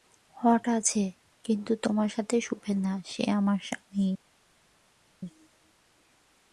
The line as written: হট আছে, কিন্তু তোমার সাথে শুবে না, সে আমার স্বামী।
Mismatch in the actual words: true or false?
false